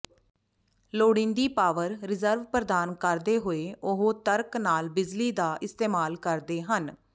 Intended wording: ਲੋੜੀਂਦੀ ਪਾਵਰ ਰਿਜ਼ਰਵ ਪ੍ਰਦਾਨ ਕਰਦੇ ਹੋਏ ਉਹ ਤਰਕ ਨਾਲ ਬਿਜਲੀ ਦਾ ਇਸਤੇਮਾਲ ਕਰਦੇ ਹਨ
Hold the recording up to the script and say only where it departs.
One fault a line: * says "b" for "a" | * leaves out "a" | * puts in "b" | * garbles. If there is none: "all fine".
all fine